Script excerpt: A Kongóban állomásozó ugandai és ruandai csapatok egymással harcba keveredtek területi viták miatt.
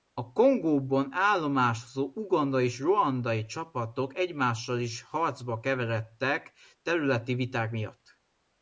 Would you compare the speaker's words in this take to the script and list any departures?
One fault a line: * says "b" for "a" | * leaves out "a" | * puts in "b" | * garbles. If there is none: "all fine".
* puts in "is"